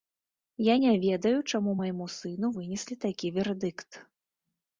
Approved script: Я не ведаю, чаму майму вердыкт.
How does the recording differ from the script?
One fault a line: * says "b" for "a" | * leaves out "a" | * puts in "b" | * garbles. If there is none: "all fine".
* puts in "сыну вынеслі такі"